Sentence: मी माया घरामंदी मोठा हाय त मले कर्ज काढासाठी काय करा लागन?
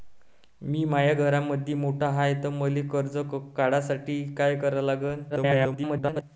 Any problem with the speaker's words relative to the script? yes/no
yes